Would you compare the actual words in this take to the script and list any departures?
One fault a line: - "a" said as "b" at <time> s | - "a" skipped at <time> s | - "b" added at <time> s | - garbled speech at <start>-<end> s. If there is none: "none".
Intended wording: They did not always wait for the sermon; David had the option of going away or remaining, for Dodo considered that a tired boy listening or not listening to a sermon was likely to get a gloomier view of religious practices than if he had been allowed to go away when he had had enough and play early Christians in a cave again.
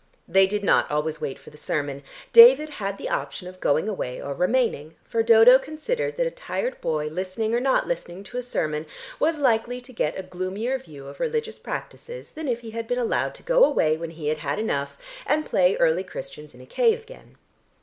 none